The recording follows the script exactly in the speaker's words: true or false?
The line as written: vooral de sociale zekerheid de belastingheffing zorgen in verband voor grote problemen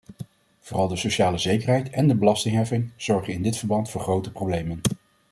false